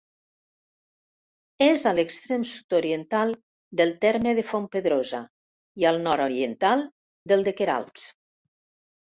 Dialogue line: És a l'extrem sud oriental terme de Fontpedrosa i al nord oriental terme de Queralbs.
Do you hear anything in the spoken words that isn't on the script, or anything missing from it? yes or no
yes